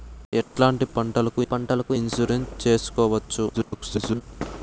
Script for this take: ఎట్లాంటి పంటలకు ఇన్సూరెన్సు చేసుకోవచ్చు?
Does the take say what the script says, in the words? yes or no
no